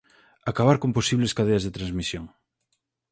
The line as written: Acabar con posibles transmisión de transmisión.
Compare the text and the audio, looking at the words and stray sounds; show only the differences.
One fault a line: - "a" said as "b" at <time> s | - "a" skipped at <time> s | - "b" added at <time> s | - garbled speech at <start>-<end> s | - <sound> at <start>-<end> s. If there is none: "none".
- "transmisión" said as "cadeas" at 1.4 s